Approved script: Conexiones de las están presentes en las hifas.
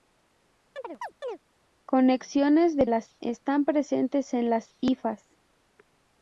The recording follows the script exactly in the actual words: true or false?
true